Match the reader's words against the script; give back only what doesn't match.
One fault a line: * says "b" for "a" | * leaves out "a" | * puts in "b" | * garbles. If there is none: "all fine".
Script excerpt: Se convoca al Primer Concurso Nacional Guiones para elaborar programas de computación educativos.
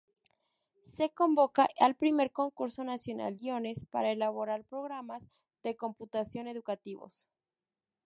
all fine